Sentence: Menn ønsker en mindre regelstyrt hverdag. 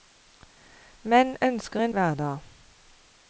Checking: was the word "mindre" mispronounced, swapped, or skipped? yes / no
yes